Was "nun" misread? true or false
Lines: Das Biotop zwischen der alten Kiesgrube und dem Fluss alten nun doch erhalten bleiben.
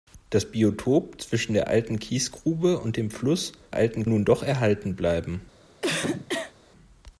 false